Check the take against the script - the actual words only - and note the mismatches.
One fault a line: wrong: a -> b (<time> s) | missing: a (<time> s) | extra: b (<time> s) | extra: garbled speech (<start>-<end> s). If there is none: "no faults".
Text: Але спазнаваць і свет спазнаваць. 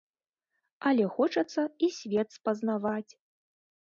wrong: спазнаваць -> хочацца (1.2 s)